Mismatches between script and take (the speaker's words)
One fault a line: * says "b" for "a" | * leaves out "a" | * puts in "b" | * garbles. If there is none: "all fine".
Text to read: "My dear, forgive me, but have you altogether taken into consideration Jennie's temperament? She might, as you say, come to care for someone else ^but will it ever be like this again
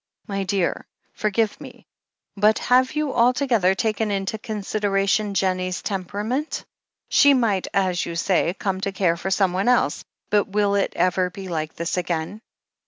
all fine